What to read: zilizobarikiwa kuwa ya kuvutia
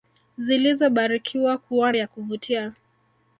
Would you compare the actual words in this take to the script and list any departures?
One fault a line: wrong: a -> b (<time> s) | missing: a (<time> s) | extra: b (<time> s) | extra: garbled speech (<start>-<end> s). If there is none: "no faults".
no faults